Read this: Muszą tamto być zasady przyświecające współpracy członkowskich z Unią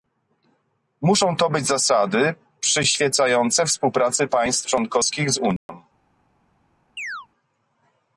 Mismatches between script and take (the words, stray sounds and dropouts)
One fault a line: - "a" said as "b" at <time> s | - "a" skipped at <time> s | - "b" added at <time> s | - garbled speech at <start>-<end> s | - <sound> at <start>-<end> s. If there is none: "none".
- "tamto" said as "to" at 1.4 s
- "państw" added at 4.3 s
- dropout at 5.6-5.7 s
- chirp at 7.0-7.3 s